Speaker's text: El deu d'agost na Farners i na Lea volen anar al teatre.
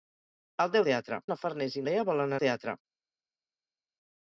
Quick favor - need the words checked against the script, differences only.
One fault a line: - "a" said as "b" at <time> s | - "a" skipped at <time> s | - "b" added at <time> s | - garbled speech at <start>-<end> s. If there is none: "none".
- "d'agost" said as "teatre" at 0.9 s
- "na" skipped at 1.8 s
- "anar" skipped at 2.4 s